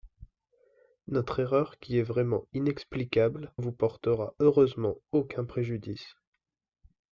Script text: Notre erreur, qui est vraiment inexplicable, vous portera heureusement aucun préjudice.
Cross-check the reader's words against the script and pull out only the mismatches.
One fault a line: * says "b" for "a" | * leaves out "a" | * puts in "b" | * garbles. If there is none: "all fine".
all fine